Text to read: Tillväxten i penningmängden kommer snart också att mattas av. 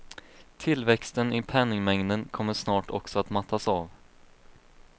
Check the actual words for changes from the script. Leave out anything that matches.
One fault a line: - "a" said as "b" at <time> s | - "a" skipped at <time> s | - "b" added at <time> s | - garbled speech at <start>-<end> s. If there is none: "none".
none